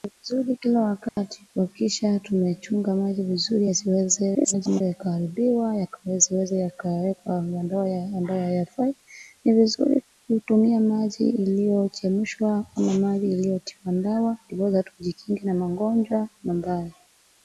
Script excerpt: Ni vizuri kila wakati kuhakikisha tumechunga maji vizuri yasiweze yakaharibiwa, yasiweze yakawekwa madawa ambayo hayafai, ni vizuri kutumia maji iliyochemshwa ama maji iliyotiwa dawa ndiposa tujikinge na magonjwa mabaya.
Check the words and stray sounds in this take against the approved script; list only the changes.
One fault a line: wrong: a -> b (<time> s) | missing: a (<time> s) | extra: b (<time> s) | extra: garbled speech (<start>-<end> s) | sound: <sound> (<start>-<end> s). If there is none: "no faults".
sound: dropout (1.1-1.2 s)
extra: garbled speech (4.3-4.8 s)